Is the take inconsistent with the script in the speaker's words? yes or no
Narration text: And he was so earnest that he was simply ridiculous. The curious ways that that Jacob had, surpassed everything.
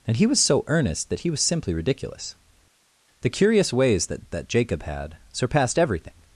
no